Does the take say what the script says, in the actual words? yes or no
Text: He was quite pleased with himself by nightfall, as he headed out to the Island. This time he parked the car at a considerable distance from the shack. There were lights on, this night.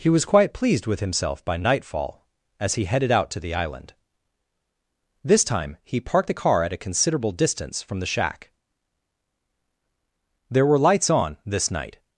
yes